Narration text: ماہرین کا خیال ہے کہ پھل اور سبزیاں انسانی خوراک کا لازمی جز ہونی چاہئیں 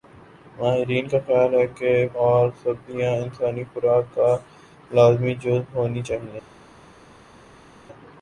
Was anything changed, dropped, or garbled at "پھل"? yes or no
yes